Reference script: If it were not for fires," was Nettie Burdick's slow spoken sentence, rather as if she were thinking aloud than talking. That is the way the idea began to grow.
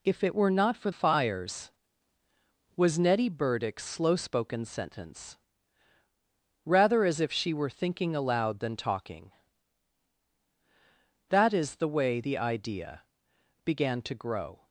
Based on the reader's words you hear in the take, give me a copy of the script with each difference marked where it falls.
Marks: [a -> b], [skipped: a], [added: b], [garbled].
If it were not for fires," was Nettie Burdick's slow spoken sentence, rather as if she were thinking aloud than talking. That is the way the idea began to grow.